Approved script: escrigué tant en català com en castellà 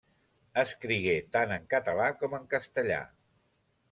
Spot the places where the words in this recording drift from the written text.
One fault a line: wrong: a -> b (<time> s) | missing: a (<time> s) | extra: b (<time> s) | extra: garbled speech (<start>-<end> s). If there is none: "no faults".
no faults